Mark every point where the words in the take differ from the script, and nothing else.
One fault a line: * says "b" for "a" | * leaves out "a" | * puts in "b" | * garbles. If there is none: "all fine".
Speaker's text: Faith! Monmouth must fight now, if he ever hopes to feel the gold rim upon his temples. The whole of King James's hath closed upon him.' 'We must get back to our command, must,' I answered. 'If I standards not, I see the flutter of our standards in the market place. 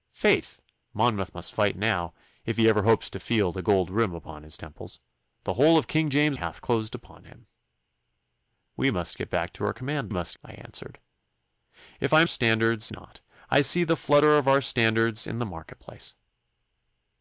all fine